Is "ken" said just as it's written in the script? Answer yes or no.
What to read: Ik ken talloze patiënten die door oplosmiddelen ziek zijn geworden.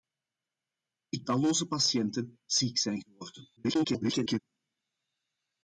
no